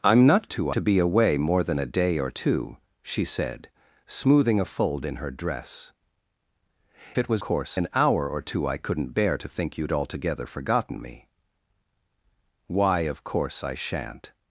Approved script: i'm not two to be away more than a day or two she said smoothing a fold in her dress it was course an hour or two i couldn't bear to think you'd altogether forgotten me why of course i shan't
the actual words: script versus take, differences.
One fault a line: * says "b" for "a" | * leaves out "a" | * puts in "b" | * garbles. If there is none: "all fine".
all fine